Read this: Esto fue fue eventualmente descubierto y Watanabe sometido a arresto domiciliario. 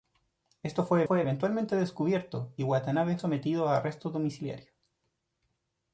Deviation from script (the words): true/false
false